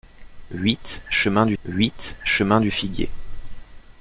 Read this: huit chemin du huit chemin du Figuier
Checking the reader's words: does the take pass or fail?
pass